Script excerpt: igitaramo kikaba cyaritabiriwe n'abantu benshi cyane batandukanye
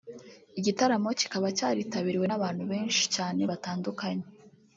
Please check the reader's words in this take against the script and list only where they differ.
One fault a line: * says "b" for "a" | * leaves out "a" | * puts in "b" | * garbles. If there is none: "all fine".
all fine